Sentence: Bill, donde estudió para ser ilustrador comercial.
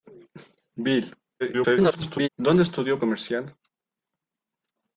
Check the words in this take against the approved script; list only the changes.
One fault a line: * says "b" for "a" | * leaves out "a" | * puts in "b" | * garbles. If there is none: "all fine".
* garbles
* leaves out "para ser ilustrador"